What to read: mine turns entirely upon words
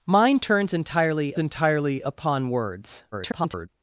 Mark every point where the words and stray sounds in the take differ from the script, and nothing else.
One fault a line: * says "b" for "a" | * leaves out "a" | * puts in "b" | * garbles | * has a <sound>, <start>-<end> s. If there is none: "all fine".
* puts in "entirely"
* garbles